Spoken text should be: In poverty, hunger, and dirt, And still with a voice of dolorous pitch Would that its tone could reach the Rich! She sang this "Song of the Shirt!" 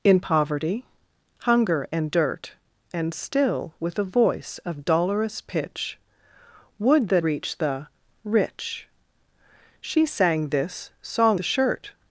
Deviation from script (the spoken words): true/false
true